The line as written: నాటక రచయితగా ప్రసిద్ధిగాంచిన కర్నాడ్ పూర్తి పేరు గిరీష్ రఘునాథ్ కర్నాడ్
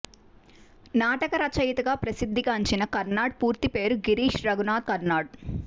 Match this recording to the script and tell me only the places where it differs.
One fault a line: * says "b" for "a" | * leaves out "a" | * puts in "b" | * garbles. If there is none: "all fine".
all fine